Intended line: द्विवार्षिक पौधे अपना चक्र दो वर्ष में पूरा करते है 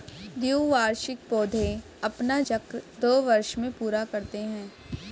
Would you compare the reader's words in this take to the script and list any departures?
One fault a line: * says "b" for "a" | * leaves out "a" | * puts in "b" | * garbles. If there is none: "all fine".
all fine